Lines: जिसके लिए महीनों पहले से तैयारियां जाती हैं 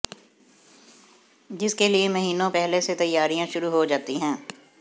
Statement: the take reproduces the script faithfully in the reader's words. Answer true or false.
false